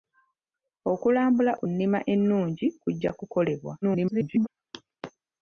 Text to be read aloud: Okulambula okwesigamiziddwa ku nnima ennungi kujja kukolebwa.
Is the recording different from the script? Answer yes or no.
yes